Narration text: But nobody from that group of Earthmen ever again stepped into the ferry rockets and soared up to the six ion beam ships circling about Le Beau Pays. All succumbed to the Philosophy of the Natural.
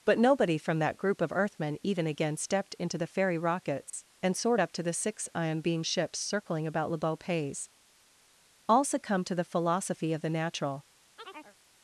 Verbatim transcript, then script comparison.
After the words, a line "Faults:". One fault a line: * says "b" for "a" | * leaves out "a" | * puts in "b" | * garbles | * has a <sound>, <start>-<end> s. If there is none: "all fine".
But nobody from that group of Earthmen even again stepped into the ferry rockets and soared up to the six ion beam ships circling about Le Beau Pays. All succumbed to the Philosophy of the Natural.
Faults:
* says "even" for "ever"
* has a dropout, 3.9-3.9 s
* has a chirp, 11.2-11.6 s